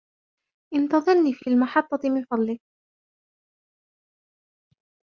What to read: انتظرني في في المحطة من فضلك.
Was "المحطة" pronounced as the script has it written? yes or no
yes